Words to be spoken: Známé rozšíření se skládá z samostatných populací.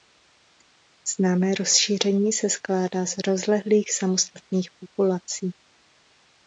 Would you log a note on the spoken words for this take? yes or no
yes